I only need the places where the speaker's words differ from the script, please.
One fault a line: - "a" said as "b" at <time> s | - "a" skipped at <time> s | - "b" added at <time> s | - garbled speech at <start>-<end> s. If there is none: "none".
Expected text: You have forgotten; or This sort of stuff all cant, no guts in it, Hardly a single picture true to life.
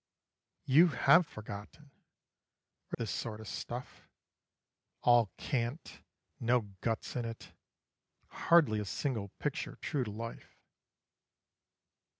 none